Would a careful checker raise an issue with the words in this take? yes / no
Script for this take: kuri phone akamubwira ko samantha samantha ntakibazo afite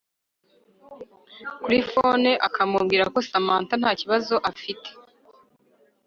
yes